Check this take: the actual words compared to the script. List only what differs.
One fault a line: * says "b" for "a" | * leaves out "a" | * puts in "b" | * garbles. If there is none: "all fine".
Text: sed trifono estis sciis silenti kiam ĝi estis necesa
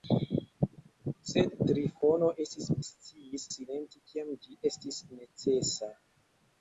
all fine